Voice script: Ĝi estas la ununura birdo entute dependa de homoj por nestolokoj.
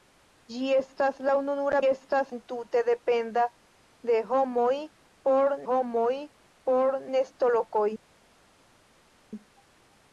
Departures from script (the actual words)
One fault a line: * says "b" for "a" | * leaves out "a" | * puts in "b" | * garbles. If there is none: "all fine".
* says "estas" for "birdo"
* puts in "homoj por"